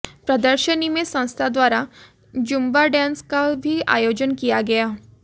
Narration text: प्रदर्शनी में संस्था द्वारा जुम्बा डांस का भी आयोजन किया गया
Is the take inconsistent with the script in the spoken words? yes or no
no